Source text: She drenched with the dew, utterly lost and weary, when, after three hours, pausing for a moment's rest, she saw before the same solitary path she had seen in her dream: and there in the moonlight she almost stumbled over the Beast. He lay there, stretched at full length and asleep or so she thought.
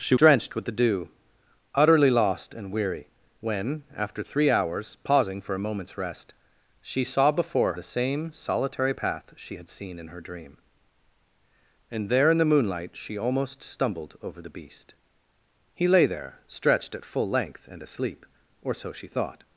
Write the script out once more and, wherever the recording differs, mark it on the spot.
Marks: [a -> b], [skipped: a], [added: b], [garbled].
She drenched with the dew, utterly lost and weary, when, after three hours, pausing for a moment's rest, she saw before the same solitary path she had seen in her dream: and there in the moonlight she almost stumbled over the Beast. He lay there, stretched at full length and asleep or so she thought.